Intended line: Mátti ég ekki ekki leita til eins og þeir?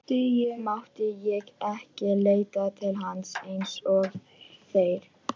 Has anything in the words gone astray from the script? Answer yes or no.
yes